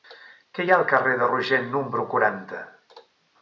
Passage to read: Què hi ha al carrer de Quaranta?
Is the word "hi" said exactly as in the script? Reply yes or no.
yes